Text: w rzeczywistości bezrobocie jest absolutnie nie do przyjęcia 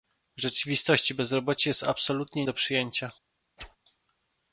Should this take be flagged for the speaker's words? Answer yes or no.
yes